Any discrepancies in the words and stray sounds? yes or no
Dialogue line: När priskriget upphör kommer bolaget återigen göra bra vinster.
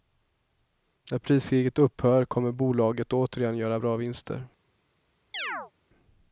yes